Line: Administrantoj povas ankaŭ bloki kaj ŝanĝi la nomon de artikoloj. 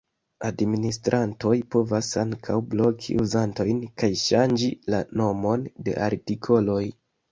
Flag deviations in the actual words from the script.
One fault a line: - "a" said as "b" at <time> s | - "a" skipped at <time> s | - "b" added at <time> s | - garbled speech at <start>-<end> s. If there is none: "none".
- "uzantojn" added at 3.2 s